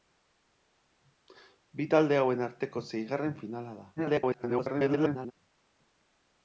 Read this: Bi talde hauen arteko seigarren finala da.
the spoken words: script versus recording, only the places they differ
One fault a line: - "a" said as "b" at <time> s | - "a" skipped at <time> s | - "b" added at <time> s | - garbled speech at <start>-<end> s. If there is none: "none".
- garbled speech at 4.0-5.3 s